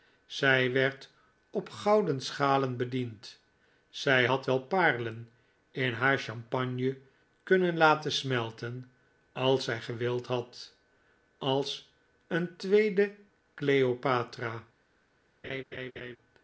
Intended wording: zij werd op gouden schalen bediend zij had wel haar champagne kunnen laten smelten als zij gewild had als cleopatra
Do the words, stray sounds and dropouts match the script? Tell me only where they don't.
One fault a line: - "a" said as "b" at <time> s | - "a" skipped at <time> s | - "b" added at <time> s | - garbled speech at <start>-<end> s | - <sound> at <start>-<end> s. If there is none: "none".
- "paarlen in" added at 4.6 s
- "een tweede" added at 12.3 s
- laugh at 15.4-16.2 s